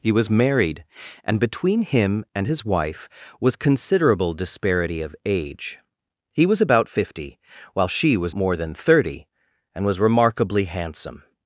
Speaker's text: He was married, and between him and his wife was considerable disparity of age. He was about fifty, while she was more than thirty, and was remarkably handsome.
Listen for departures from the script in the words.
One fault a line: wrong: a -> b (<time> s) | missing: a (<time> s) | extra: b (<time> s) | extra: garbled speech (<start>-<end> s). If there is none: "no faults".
no faults